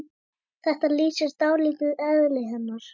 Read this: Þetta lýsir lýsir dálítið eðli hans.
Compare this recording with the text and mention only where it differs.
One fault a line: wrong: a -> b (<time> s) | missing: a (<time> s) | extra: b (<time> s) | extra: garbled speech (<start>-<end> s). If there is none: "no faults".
missing: lýsir (1.4 s)
wrong: hans -> hennar (2.5 s)